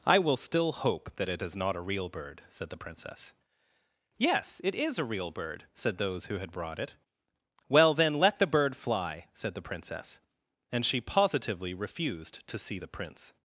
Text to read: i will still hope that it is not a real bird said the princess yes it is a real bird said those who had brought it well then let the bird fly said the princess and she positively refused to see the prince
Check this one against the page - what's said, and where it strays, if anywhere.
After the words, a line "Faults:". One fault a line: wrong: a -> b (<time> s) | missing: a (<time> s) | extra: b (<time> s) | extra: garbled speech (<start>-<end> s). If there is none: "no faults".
i will still hope that it is not a real bird said the princess yes it is a real bird said those who had brought it well then let the bird fly said the princess and she positively refused to see the prince
Faults:
no faults